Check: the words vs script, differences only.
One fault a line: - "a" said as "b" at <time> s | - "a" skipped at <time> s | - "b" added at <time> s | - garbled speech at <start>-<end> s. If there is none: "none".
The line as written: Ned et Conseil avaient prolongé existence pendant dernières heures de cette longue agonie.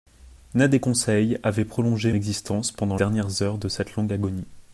none